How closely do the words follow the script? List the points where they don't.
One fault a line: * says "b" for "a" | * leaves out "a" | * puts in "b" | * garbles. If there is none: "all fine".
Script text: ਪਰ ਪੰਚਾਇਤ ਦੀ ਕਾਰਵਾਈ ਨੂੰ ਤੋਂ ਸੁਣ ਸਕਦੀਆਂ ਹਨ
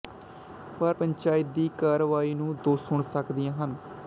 all fine